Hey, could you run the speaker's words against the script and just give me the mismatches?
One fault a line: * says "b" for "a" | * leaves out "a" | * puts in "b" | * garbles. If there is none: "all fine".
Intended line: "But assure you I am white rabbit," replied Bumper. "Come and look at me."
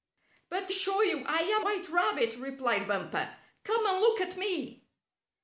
all fine